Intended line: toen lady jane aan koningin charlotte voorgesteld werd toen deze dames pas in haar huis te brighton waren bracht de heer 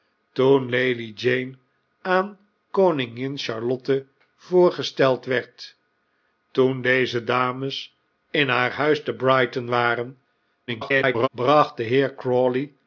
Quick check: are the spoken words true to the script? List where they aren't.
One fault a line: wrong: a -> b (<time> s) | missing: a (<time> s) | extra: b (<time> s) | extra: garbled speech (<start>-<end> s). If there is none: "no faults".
missing: pas (8.0 s)
extra: garbled speech (10.7-11.3 s)